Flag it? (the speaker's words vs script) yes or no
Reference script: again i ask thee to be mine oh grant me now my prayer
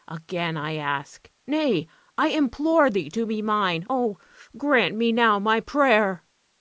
yes